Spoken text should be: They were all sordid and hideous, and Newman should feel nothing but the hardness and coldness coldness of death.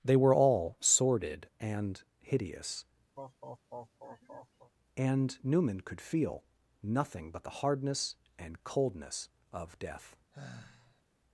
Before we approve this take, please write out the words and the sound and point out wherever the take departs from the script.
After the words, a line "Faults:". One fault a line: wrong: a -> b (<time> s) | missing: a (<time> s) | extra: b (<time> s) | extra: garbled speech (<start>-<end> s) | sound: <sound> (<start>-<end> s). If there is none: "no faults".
They were all sordid and hideous, and Newman could feel nothing but the hardness and coldness of death.
Faults:
sound: laugh (3.2-4.7 s)
wrong: should -> could (5.8 s)
missing: coldness (9.3 s)
sound: sigh (10.3-11.0 s)